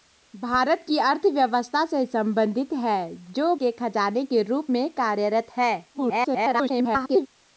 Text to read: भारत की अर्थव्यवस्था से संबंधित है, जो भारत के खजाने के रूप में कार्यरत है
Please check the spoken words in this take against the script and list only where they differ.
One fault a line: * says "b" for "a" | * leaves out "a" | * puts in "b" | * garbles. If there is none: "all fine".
* leaves out "भारत"
* garbles